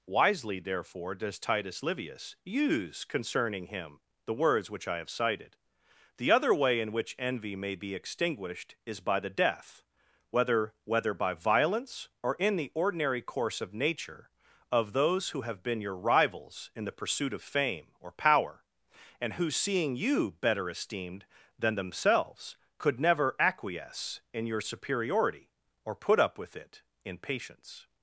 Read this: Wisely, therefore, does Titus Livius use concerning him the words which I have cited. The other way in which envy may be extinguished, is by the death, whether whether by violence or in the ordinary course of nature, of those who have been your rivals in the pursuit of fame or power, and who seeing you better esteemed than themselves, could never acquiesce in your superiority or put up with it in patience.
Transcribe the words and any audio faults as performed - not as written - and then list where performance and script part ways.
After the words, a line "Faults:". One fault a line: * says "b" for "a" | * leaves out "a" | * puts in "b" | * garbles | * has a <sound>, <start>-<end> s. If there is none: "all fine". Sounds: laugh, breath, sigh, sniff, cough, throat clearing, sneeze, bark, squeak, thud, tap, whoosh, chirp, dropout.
Wisely, therefore, does Titus Livius use concerning him the words which I have cited. The other way in which envy may be extinguished, is by the death, whether whether by violence or in the ordinary course of nature, of those who have been your rivals in the pursuit of fame or power, and who seeing you better esteemed than themselves, could never acquiesce in your superiority or put up with it in patience.
Faults:
all fine